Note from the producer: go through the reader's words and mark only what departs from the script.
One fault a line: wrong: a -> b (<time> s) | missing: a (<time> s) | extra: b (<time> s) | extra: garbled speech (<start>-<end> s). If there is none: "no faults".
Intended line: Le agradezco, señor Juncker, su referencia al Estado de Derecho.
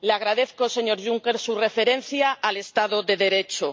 no faults